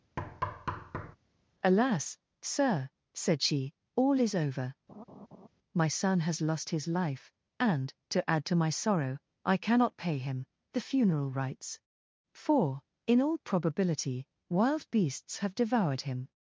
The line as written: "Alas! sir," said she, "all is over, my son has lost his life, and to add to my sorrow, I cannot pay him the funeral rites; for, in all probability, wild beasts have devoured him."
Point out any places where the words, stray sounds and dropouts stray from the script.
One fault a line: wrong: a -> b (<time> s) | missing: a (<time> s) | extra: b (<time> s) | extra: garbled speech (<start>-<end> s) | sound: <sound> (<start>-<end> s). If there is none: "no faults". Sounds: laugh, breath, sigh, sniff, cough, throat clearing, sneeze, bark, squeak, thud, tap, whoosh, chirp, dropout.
sound: thud (0.2-1.2 s)
sound: laugh (4.9-5.5 s)